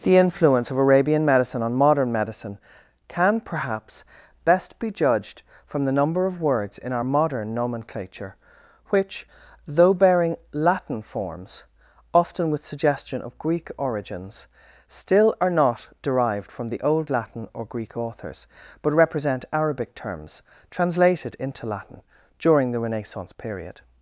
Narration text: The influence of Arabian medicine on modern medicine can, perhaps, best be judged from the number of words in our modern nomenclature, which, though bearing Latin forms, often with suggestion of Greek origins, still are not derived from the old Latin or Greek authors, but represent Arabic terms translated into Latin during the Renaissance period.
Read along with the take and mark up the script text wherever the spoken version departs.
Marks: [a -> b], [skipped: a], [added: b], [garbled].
The influence of Arabian medicine on modern medicine can, perhaps, best be judged from the number of words in our modern nomenclature, which, though bearing Latin forms, often with suggestion of Greek origins, still are not derived from the old Latin or Greek authors, but represent Arabic terms translated into Latin during the Renaissance period.